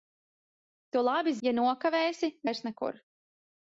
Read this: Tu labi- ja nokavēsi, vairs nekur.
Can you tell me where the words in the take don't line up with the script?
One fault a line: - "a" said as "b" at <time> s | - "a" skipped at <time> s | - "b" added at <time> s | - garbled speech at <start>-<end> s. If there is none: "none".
none